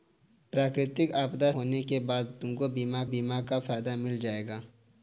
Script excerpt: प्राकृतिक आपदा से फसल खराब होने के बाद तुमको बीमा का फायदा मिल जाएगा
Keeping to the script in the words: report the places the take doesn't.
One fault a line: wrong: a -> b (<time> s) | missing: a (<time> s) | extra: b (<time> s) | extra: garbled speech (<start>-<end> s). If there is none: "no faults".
missing: से फसल खराब (1.5 s)
extra: बीमा (3.1 s)